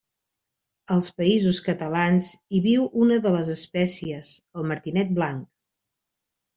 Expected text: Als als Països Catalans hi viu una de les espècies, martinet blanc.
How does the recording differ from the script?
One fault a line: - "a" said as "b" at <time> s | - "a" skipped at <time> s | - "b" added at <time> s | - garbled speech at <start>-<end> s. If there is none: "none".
- "als" skipped at 1.1 s
- "el" added at 4.6 s